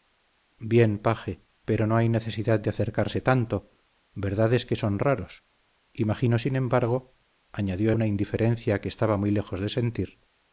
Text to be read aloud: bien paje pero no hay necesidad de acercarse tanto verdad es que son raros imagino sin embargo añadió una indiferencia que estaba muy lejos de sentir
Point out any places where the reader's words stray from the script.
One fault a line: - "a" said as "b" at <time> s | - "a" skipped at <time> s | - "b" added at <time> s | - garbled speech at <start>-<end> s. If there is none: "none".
none